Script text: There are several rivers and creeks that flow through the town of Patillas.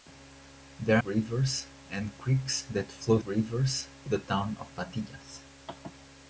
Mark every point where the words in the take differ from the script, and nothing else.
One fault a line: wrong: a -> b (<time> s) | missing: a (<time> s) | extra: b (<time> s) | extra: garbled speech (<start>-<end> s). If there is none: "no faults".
missing: are several (1.0 s)
wrong: through -> rivers (3.2 s)